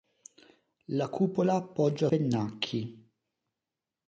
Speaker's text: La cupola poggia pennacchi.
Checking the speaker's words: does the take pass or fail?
pass